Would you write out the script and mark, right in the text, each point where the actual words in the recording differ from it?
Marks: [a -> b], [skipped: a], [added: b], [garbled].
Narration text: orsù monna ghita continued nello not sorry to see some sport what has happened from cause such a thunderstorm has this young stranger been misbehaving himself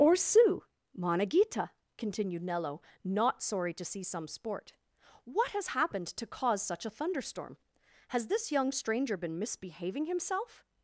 orsù monna ghita continued nello not sorry to see some sport what has happened [from -> to] cause such a thunderstorm has this young stranger been misbehaving himself